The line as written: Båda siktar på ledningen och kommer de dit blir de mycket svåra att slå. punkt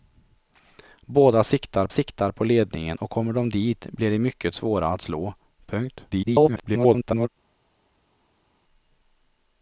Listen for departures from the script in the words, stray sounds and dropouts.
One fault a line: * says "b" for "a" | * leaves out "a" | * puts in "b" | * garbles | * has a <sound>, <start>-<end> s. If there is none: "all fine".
* puts in "siktar"
* garbles